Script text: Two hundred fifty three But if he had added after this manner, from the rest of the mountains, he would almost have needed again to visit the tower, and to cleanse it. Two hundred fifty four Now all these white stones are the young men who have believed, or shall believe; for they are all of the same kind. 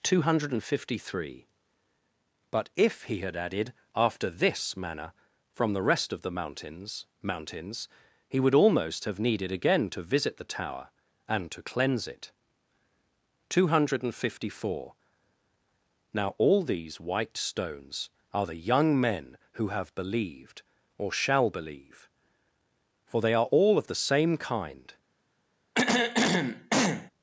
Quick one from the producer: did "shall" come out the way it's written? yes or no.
yes